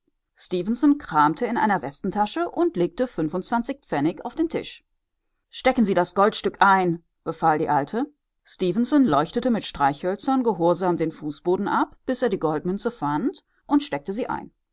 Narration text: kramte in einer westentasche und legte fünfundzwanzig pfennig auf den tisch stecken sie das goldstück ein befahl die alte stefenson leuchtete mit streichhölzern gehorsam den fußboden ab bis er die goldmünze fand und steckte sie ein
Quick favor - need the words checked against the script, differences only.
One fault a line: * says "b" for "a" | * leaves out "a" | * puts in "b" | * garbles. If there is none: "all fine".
all fine